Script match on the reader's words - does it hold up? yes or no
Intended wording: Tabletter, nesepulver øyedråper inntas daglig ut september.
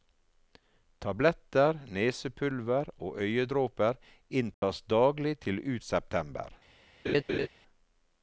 no